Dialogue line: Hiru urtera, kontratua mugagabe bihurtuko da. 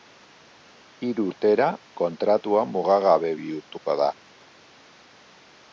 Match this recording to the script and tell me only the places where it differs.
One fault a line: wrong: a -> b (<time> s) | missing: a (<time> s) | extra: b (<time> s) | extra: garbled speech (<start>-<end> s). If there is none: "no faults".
no faults